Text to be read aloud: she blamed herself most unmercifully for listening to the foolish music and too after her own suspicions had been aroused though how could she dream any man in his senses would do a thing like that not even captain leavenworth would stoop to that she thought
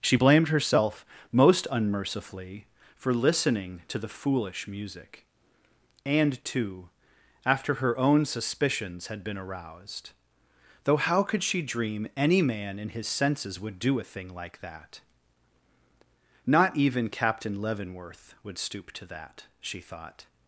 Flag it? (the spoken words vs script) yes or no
no